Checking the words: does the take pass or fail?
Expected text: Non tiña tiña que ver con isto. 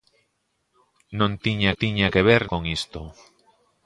pass